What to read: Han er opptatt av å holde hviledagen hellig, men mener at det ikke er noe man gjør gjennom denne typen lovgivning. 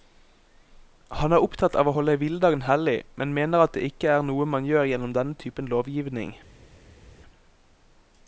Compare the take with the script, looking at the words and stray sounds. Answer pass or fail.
pass